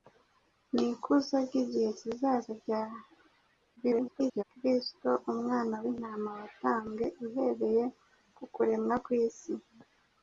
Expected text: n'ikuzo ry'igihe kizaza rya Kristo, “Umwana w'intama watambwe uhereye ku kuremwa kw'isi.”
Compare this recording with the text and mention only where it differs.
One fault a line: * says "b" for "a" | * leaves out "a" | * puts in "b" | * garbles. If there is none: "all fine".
* garbles